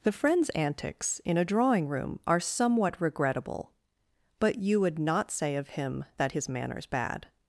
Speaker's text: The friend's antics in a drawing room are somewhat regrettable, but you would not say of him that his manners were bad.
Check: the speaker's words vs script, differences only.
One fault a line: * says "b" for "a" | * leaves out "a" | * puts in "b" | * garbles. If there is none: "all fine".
* leaves out "were"